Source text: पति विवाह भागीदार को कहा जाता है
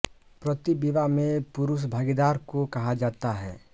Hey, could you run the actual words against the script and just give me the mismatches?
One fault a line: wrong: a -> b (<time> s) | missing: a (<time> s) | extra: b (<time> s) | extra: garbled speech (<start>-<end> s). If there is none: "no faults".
extra: में पुरुष (1.1 s)